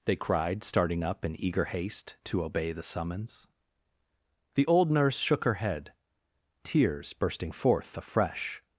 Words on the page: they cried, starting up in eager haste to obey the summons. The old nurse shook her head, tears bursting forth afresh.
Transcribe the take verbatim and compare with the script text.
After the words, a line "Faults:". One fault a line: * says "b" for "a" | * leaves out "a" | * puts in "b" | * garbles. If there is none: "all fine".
they cried, starting up in eager haste to obey the summons. The old nurse shook her head, tears bursting forth afresh.
Faults:
all fine